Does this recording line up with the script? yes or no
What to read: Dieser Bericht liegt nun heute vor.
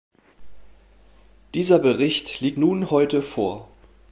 yes